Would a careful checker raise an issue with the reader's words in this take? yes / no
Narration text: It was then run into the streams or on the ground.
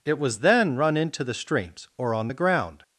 no